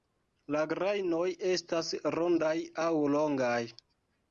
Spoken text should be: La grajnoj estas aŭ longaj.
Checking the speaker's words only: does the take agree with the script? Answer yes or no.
no